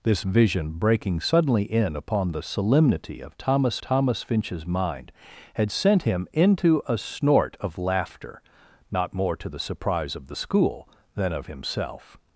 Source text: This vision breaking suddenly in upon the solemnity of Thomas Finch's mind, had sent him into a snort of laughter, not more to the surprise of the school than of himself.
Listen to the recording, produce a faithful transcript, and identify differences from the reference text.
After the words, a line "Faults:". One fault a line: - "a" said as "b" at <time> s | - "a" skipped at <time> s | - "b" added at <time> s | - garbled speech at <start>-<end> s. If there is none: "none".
This vision breaking suddenly in upon the solemnity of Thomas Thomas Finch's mind, had sent him into a snort of laughter, not more to the surprise of the school than of himself.
Faults:
- "Thomas" added at 3.8 s